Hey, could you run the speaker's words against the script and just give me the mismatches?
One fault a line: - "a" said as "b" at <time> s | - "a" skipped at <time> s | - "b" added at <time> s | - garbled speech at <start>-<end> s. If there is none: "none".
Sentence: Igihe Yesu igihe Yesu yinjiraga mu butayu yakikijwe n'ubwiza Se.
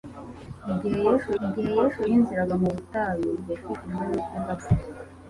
none